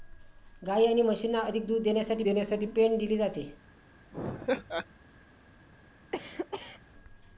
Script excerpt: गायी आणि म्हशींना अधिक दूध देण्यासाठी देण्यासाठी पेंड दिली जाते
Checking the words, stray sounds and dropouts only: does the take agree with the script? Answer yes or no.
no